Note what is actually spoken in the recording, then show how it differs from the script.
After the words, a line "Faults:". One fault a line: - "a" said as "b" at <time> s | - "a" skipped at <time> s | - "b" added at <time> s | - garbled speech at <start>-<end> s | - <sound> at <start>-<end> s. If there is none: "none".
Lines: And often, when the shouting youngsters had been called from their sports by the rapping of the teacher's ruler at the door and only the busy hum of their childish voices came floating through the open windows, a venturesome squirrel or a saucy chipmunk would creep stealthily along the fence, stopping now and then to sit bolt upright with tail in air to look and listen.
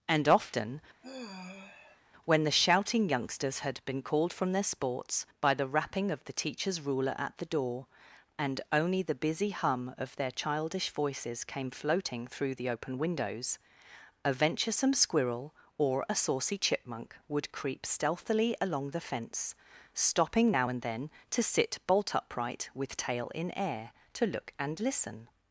And often, when the shouting youngsters had been called from their sports by the rapping of the teacher's ruler at the door and only the busy hum of their childish voices came floating through the open windows, a venturesome squirrel or a saucy chipmunk would creep stealthily along the fence, stopping now and then to sit bolt upright with tail in air to look and listen.
Faults:
- sigh at 1.0-2.0 s